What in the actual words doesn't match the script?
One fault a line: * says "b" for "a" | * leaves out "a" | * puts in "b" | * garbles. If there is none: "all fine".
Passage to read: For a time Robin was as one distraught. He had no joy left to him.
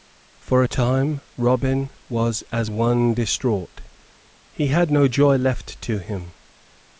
all fine